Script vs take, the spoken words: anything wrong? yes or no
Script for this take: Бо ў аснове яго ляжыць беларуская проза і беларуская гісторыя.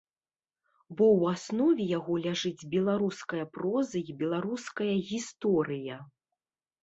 no